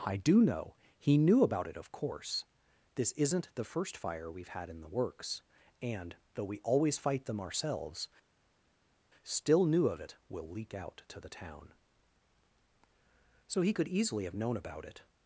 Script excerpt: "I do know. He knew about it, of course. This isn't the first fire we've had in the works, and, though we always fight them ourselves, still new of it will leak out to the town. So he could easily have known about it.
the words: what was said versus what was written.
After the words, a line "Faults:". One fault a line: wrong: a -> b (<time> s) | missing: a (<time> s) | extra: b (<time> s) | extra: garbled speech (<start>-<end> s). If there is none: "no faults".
"I do know. He knew about it, of course. This isn't the first fire we've had in the works, and, though we always fight them ourselves, still new of it will leak out to the town. So he could easily have known about it.
Faults:
no faults